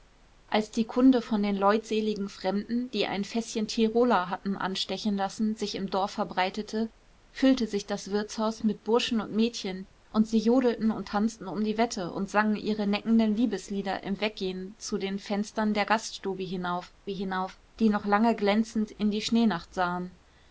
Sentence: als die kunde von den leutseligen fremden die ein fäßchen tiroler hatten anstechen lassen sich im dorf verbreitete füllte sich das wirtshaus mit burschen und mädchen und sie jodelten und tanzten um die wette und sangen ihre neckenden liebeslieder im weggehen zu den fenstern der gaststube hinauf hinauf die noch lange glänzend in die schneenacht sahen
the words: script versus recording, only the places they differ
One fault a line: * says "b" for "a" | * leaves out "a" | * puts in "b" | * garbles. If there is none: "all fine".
all fine